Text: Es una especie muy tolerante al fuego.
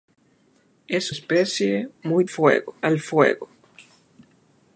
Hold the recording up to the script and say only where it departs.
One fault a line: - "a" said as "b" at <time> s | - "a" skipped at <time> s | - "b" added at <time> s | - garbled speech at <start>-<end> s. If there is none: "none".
- "una" skipped at 1.1 s
- "tolerante" said as "fuego" at 2.2 s